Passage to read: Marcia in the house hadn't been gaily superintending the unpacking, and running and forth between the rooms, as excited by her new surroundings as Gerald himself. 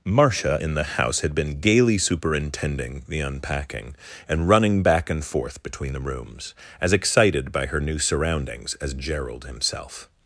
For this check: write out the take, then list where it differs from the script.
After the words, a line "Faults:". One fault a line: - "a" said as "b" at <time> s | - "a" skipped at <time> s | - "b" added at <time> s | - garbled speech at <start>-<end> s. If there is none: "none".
Marcia in the house had been gaily superintending the unpacking, and running back and forth between the rooms, as excited by her new surroundings as Gerald himself.
Faults:
- "hadn't" said as "had" at 1.2 s
- "back" added at 4.8 s